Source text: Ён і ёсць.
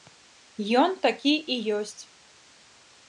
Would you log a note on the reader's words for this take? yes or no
yes